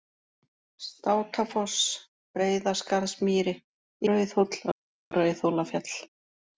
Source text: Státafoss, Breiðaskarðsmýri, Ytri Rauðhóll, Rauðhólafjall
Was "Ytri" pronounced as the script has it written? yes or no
no